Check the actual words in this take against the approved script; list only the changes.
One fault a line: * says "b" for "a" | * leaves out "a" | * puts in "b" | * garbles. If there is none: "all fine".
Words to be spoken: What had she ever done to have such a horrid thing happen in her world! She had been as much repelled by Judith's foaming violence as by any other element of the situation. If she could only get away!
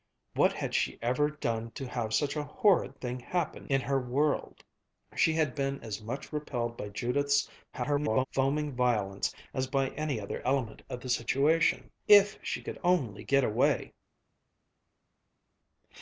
* garbles